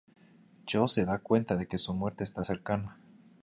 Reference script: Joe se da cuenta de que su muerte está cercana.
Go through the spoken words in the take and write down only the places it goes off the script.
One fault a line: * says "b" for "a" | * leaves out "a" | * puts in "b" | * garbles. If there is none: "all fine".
all fine